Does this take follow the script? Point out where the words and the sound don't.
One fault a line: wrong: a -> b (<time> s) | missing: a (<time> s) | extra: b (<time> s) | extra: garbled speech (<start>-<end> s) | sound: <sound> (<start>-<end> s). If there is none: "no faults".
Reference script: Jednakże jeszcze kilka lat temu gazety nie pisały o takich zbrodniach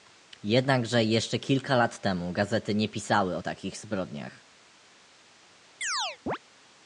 sound: chirp (5.8-6.4 s)